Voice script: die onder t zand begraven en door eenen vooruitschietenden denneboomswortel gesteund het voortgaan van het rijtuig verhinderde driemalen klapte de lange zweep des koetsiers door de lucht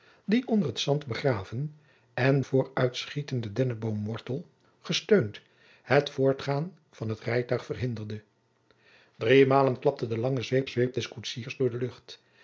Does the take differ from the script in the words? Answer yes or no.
yes